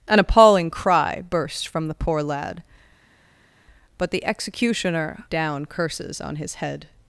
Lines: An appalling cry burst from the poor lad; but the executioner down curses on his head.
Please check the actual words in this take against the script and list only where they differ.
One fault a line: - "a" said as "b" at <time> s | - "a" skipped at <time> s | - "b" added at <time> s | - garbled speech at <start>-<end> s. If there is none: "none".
none